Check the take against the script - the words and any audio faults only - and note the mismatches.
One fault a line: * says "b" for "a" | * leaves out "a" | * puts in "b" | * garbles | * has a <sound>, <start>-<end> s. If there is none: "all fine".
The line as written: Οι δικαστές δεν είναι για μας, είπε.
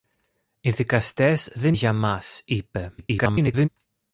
* leaves out "είναι"
* garbles